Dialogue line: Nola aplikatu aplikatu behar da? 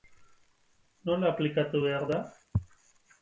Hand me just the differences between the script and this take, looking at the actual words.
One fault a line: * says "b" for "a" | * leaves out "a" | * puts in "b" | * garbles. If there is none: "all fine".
* leaves out "aplikatu"